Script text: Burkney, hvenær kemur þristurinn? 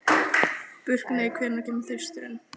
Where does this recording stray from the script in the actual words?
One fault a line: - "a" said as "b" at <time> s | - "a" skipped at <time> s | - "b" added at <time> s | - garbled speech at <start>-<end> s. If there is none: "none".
none